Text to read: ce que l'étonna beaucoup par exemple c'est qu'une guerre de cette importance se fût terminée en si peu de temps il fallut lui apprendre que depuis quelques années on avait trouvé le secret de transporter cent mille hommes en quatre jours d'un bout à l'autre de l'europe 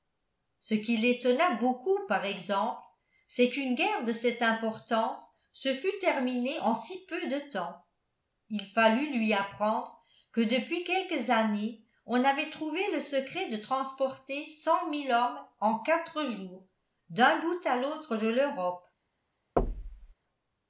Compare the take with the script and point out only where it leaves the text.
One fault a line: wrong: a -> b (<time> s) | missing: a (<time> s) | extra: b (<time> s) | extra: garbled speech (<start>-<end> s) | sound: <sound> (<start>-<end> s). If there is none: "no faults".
wrong: que -> qui (0.7 s)
sound: thud (19.6-20.1 s)